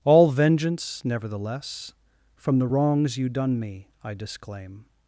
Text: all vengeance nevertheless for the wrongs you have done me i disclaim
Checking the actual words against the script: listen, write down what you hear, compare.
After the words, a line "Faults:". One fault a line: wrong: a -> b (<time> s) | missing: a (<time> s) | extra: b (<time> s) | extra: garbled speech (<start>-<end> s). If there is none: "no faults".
all vengeance nevertheless from the wrongs you done me i disclaim
Faults:
wrong: for -> from (2.4 s)
missing: have (3.3 s)